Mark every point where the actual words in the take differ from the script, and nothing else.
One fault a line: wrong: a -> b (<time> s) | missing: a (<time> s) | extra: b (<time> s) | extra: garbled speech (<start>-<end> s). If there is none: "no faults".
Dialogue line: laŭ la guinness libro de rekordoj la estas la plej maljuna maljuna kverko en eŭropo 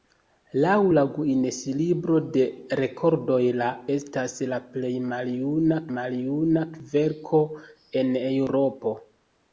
no faults